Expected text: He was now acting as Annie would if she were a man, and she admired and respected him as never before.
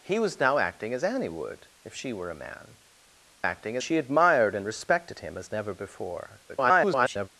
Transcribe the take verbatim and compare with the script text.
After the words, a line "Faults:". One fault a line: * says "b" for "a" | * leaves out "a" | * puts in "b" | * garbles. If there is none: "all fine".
He was now acting as Annie would if she were a man, acting she admired and respected him as never before. [garbled]
Faults:
* says "acting" for "and"
* garbles